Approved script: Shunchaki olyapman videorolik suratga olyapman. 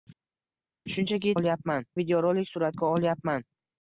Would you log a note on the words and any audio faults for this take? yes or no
no